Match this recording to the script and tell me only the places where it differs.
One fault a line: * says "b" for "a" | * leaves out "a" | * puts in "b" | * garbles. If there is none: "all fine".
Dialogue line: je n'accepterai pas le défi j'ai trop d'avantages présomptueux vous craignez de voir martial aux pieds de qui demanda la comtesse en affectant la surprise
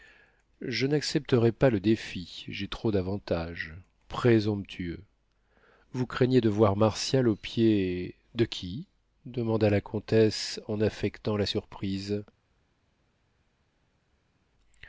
all fine